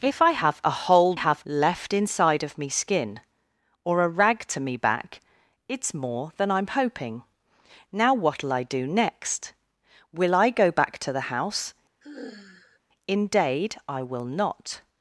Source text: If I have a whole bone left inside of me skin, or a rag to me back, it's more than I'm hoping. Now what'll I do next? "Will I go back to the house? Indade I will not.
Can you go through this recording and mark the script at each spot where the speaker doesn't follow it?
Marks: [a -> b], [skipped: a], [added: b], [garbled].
If I have a whole [bone -> have] left inside of me skin, or a rag to me back, it's more than I'm hoping. Now what'll I do next? "Will I go back to the house? Indade I will not.